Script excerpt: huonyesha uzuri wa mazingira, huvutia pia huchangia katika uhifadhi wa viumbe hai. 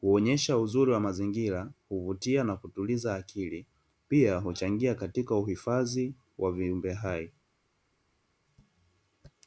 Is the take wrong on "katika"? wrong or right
right